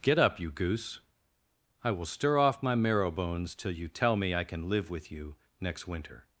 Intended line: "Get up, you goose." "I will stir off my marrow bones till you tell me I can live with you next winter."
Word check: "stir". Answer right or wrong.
right